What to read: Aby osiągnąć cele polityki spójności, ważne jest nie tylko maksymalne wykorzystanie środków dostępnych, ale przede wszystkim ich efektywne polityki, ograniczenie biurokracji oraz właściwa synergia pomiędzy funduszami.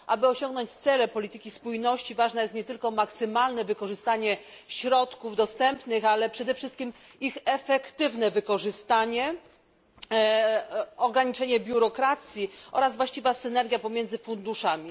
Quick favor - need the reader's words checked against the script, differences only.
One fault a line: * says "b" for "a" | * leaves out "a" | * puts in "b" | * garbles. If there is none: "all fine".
* says "wykorzystanie" for "polityki"